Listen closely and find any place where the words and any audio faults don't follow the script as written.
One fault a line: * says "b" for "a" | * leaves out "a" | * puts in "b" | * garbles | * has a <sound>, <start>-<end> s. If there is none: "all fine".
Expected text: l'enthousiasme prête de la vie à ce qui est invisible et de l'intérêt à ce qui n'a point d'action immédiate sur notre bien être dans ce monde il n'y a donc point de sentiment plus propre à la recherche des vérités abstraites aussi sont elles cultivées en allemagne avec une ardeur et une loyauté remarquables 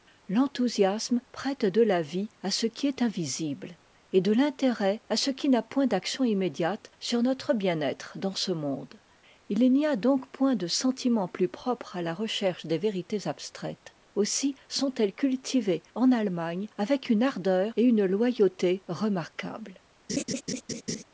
* has a laugh, 20.1-21.0 s